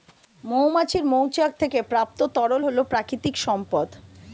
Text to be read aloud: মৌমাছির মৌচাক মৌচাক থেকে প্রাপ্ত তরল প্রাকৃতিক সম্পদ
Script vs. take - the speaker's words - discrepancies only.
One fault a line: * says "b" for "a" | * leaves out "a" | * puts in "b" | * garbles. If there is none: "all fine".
* leaves out "মৌচাক"
* puts in "হল"